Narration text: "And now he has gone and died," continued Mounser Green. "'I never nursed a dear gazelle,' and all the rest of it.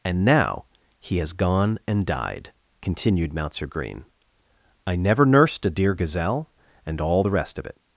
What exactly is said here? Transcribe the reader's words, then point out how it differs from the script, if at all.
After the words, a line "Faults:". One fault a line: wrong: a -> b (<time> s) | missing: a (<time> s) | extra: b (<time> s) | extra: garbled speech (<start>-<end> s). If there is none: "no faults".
"And now he has gone and died," continued Mounser Green. "'I never nursed a dear gazelle,' and all the rest of it.
Faults:
no faults